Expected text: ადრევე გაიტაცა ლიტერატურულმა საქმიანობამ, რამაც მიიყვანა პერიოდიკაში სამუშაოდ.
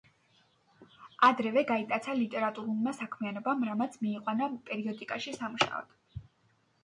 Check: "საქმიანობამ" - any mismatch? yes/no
no